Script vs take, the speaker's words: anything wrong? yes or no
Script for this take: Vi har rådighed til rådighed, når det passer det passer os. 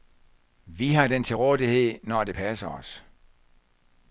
yes